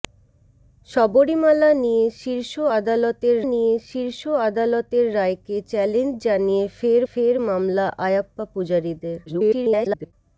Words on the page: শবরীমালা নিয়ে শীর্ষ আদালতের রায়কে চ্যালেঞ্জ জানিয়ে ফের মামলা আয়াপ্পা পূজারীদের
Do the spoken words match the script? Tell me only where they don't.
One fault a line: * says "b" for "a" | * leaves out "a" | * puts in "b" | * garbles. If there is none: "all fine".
* puts in "নিয়ে শীর্ষ আদালতের"
* puts in "ফের"
* garbles